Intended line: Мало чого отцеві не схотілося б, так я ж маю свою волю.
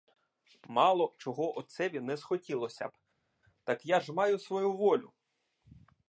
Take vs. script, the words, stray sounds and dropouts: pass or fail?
pass